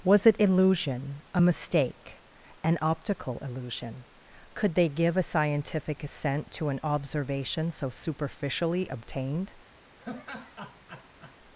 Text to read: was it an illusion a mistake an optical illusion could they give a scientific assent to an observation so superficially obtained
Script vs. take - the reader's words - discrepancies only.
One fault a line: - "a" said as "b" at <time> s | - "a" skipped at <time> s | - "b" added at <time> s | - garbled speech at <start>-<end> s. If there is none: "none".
- "an" skipped at 0.3 s